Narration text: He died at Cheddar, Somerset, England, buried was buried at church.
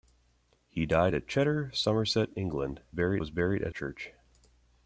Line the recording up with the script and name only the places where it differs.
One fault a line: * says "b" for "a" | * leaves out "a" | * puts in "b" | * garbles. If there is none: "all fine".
all fine